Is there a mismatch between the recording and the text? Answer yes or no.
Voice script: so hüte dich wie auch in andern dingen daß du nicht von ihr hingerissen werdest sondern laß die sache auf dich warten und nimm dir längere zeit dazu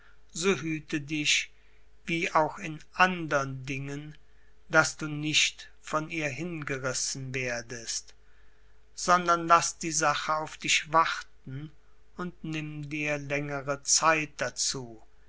no